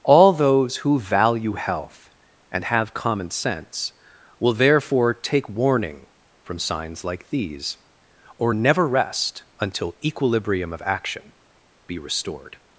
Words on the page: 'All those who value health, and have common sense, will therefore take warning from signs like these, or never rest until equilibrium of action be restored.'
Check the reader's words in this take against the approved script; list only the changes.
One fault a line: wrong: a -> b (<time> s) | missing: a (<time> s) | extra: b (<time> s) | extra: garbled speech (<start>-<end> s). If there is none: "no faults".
no faults